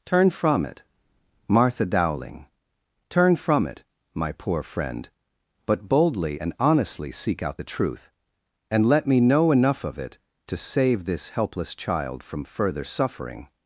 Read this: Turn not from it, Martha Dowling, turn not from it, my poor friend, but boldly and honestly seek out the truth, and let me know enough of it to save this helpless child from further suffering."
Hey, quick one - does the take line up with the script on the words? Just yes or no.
no